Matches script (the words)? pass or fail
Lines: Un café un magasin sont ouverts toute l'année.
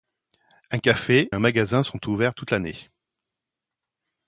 pass